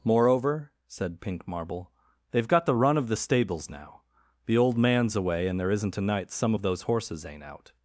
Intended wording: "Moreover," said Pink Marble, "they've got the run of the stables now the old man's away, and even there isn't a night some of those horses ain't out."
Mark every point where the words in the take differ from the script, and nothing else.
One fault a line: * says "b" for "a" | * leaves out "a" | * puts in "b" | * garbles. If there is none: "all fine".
* leaves out "even"